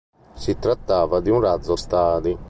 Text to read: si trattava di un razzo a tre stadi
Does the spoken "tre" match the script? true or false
false